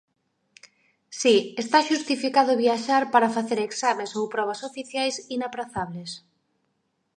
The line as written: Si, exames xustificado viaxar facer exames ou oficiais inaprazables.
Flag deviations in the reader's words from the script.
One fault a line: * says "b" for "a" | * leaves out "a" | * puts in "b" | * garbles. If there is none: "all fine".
* says "está" for "exames"
* puts in "para"
* puts in "probas"